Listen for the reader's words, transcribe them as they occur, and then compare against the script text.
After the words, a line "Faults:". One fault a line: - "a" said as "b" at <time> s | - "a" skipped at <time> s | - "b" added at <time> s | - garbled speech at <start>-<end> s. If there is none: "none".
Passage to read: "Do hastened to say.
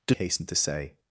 "Do hastened to say.
Faults:
none